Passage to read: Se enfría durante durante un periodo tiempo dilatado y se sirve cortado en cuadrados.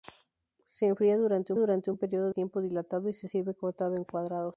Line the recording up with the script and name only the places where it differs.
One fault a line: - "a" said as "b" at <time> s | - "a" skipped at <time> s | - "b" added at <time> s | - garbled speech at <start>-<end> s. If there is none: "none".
none